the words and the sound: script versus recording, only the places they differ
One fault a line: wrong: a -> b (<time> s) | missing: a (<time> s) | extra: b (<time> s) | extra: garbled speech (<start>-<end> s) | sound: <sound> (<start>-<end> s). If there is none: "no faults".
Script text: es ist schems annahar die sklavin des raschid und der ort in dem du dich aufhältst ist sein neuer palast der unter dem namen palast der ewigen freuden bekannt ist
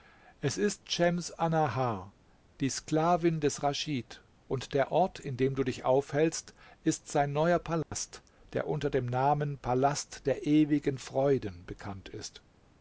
sound: dropout (7.8-7.9 s)